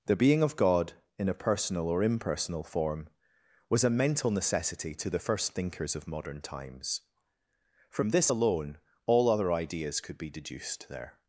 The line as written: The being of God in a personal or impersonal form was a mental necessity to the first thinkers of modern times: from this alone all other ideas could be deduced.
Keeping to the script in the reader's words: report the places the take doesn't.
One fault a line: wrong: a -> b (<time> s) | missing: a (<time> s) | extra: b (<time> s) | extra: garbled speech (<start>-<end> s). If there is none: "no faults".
extra: There (10.9 s)